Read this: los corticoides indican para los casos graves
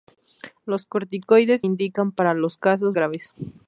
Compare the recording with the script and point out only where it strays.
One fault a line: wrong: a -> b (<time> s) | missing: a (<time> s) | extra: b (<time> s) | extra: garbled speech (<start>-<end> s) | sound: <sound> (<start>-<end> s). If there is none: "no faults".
no faults